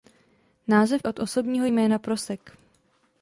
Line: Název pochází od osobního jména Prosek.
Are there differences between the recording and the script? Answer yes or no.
yes